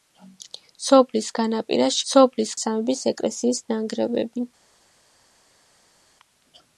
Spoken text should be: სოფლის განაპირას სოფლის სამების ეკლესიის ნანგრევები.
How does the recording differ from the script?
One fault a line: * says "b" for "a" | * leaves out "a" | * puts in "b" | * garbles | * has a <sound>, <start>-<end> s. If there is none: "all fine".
all fine